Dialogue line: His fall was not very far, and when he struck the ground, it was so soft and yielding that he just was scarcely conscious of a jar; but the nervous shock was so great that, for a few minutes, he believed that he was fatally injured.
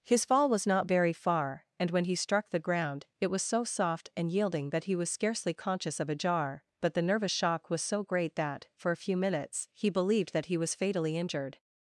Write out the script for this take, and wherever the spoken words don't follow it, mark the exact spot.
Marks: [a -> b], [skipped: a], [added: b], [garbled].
His fall was not very far, and when he struck the ground, it was so soft and yielding that he [skipped: just] was scarcely conscious of a jar; but the nervous shock was so great that, for a few minutes, he believed that he was fatally injured.